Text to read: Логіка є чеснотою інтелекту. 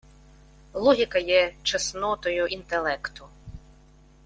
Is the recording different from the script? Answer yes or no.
no